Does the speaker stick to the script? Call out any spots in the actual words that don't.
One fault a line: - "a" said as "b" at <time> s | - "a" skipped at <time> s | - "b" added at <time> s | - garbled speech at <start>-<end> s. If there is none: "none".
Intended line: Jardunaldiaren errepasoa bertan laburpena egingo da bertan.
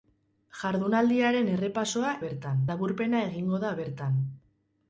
none